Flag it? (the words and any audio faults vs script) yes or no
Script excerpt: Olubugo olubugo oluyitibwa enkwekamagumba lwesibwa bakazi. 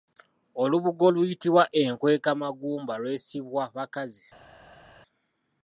yes